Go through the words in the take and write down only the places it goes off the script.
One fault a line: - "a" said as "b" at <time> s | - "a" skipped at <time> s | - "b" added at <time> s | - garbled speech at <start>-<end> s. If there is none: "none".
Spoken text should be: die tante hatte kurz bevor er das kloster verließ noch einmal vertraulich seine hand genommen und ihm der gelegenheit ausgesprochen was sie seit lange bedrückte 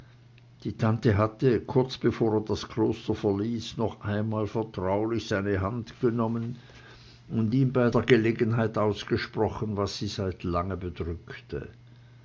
- "bei" added at 7.7 s